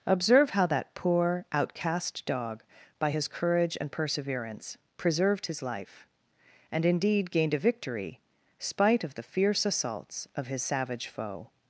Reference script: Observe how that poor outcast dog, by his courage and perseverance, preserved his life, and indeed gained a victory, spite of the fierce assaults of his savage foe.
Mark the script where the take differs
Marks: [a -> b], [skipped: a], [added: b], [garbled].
Observe how that poor outcast dog, by his courage and perseverance, preserved his life, and indeed gained a victory, spite of the fierce assaults of his savage foe.